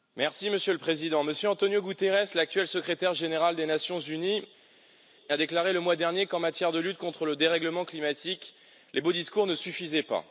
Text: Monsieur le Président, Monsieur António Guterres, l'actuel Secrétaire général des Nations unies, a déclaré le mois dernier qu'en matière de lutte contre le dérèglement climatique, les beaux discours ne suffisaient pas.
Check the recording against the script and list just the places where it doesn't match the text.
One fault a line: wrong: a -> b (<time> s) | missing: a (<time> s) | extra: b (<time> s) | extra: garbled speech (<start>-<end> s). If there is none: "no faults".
no faults